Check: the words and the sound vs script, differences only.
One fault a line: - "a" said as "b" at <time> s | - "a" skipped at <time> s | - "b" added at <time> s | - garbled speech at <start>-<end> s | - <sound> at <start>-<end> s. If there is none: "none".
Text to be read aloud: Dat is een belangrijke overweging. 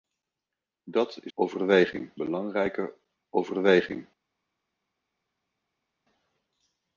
- "een" said as "overweging" at 1.3 s